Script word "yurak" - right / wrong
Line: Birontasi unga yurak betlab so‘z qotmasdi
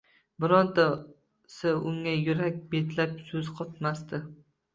right